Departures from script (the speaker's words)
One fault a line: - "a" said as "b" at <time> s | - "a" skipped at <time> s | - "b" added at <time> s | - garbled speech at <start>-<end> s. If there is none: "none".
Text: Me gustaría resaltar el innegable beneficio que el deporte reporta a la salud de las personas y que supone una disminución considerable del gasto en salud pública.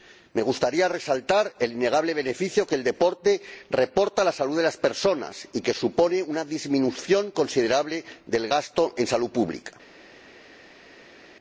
none